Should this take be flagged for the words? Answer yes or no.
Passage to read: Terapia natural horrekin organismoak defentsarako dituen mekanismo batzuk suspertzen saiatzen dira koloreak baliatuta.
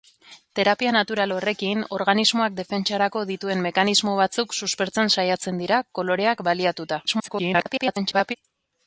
yes